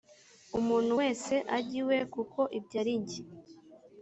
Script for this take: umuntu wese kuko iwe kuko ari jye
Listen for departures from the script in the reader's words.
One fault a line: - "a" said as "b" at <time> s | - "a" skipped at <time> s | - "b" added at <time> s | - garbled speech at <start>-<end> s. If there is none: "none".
- "kuko" said as "ajye" at 1.6 s
- "ibyo" added at 2.6 s